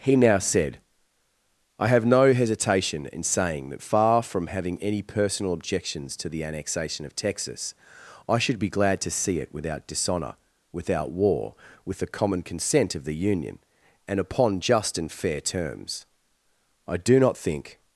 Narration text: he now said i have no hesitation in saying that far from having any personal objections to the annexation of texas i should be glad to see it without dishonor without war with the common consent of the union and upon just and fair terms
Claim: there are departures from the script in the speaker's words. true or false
true